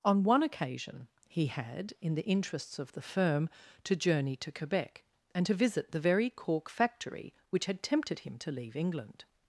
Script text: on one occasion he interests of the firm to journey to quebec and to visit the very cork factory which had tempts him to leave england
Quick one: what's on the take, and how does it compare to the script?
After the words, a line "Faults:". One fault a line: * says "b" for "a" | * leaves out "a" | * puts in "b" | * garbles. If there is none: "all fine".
on one occasion he had in the interests of the firm to journey to quebec and to visit the very cork factory which had tempted him to leave england
Faults:
* puts in "had in the"
* says "tempted" for "tempts"